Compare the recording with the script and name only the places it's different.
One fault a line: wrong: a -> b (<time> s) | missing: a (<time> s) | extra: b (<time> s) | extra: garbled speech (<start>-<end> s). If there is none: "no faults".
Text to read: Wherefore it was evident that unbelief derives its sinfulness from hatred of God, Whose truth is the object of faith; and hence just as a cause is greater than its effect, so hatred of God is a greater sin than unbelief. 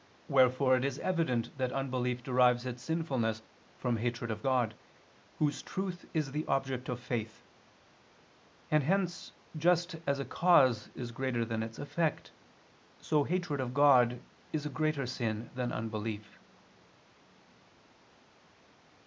wrong: was -> is (0.8 s)